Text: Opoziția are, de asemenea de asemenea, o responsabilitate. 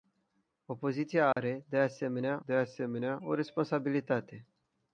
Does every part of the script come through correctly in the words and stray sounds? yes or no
no